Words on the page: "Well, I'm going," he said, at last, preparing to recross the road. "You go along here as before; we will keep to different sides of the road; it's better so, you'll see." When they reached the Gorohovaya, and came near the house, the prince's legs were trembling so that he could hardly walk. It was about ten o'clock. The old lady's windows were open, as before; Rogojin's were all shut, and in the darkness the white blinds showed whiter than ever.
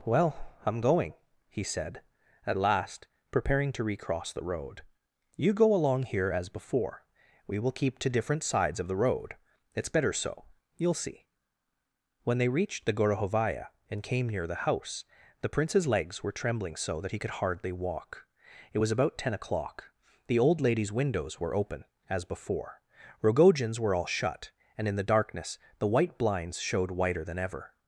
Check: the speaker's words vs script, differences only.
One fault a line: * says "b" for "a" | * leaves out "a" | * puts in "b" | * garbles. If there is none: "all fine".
all fine